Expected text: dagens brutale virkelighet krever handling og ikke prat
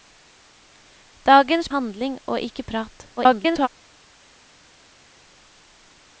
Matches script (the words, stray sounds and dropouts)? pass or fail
fail